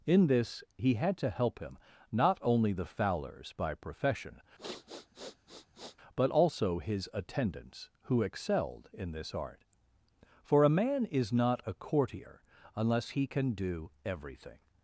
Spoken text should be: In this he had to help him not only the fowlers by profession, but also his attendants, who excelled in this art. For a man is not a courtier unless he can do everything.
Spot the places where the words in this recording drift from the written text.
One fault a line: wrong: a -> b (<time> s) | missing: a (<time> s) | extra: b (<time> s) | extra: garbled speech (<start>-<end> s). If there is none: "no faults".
no faults